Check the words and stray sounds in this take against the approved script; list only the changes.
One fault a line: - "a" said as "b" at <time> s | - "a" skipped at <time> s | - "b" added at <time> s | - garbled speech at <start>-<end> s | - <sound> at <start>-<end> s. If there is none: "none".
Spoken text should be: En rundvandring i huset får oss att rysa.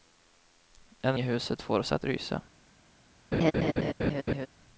- "rundvandring" skipped at 1.2 s
- laugh at 3.3-4.5 s